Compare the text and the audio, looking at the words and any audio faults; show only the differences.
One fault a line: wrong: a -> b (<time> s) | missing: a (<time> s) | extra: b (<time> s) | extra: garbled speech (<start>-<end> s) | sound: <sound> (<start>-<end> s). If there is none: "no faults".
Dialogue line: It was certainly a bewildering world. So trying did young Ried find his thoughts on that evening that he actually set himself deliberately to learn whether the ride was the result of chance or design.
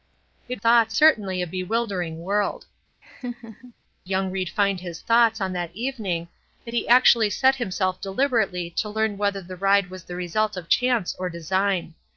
wrong: was -> thoughts (0.6 s)
missing: So trying did (2.6 s)
sound: laugh (3.0-3.7 s)